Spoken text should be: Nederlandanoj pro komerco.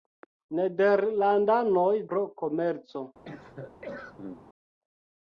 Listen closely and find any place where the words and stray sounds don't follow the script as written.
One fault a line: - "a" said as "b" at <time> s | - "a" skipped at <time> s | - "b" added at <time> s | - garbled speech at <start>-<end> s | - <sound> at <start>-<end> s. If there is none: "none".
- cough at 3.2-4.5 s